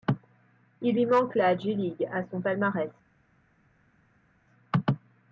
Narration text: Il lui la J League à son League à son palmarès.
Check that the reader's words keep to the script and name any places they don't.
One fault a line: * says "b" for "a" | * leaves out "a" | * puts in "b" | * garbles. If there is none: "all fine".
* puts in "manque"
* leaves out "League à son"